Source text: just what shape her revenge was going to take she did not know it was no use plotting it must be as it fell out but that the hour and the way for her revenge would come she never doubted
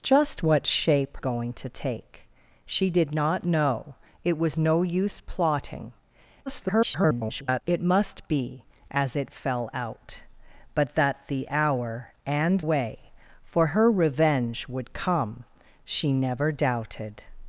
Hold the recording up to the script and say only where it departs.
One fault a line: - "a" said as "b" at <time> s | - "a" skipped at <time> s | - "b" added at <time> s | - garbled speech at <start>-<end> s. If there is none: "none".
- "her revenge was" skipped at 1.1 s
- garbled speech at 6.5-7.6 s
- "the" skipped at 12.6 s